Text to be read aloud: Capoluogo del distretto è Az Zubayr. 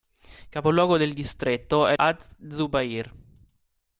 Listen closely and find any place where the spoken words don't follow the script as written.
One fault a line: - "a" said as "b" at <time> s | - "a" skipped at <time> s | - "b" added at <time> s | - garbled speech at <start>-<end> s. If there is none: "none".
none